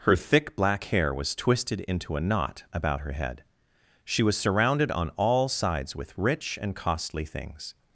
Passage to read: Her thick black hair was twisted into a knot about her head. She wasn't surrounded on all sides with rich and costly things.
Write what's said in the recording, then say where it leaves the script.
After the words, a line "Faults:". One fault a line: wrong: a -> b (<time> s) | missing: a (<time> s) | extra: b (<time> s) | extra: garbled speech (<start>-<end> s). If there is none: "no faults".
Her thick black hair was twisted into a knot about her head. She was surrounded on all sides with rich and costly things.
Faults:
wrong: wasn't -> was (4.2 s)